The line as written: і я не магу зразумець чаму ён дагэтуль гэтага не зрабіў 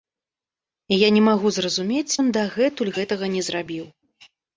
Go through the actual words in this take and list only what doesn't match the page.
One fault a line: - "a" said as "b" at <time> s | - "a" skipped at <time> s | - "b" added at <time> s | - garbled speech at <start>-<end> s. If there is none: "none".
- "чаму" skipped at 2.2 s